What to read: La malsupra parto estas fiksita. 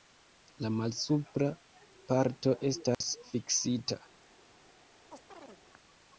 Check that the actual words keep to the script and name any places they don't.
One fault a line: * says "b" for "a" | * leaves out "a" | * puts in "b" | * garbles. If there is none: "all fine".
all fine